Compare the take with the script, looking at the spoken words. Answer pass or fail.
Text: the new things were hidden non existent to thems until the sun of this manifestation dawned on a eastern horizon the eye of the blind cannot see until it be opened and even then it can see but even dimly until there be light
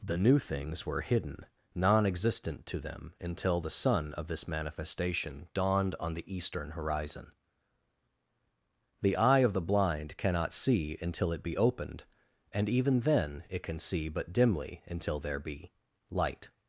fail